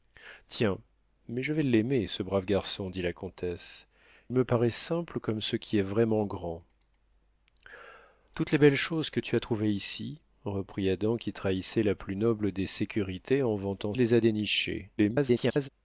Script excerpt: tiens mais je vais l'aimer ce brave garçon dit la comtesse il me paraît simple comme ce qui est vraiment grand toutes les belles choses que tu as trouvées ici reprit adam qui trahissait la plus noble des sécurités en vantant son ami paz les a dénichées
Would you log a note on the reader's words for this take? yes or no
yes